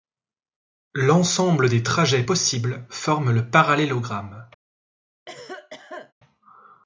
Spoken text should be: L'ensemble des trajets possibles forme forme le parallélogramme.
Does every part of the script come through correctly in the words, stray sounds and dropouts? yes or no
no